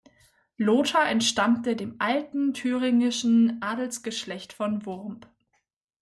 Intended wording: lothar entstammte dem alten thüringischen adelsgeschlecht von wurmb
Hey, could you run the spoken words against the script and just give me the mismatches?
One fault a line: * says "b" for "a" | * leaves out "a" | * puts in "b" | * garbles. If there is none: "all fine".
all fine